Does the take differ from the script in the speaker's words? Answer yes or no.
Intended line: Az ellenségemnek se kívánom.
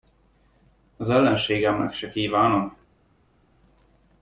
no